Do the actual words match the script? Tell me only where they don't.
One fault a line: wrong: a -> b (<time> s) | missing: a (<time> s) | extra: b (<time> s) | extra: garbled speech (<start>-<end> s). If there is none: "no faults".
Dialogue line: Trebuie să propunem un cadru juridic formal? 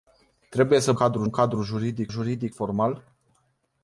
wrong: propunem -> cadru (0.9 s)
extra: juridic (2.1 s)